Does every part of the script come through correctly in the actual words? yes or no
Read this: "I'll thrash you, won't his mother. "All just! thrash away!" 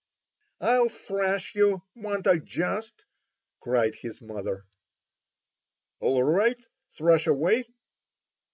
no